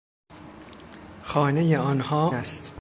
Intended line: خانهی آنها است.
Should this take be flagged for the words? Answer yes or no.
no